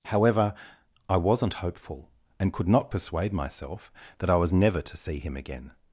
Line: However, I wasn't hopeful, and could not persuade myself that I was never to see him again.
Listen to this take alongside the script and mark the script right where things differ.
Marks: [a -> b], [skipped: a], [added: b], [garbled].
However, I wasn't hopeful, and could not persuade myself that I was never to see him again.